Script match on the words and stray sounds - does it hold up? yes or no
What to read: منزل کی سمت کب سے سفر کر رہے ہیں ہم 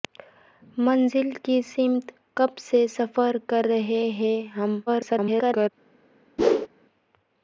no